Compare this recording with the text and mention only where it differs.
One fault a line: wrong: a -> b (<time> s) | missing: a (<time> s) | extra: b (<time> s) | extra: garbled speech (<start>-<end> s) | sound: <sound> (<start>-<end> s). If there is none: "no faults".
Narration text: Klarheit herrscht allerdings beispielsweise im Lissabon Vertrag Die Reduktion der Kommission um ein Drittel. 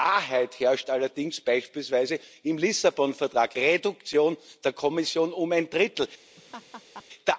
missing: Die (3.5 s)
sound: laugh (6.4-7.0 s)